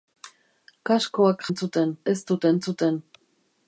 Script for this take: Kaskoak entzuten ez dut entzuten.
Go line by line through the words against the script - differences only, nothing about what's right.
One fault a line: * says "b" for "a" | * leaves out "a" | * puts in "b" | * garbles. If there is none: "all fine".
all fine